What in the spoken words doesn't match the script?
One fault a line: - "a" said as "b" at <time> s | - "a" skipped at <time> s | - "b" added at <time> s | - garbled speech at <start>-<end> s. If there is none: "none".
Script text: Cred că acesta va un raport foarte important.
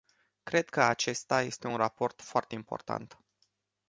- "va" said as "este" at 1.4 s